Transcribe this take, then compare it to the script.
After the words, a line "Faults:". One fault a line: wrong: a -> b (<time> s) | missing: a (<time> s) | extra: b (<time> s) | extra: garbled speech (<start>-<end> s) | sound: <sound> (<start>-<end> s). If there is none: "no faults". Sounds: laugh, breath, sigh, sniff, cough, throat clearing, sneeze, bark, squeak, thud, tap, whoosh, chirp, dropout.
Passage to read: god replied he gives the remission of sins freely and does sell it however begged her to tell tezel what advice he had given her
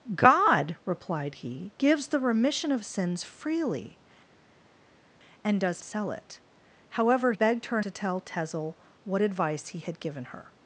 god replied he gives the remission of sins freely and does sell it however begged her to tell tezel what advice he had given her
Faults:
no faults